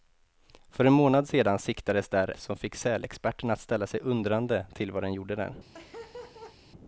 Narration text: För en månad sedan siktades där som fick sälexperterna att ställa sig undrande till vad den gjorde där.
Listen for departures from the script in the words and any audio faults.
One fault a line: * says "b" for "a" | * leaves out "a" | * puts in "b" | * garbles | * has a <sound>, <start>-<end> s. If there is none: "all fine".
* has a laugh, 5.7-6.6 s